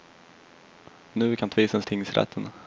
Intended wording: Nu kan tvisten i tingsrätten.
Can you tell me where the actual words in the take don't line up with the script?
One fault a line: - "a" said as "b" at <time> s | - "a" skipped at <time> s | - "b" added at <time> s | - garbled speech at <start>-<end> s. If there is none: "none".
none